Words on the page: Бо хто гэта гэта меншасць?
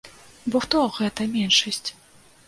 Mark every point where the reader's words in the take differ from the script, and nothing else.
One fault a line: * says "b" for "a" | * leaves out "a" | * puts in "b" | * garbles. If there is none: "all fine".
* leaves out "гэта"